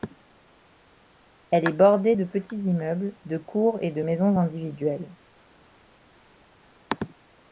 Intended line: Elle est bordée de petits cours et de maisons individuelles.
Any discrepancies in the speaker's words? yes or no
yes